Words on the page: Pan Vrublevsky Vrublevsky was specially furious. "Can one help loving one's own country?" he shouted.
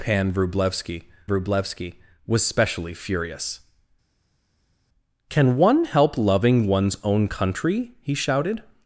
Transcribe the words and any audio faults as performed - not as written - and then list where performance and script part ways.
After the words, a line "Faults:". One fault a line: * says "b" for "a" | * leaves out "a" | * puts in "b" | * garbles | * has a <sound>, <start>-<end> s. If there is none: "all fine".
Pan Vrublevsky Vrublevsky was specially furious. "Can one help loving one's own country?" he shouted.
Faults:
all fine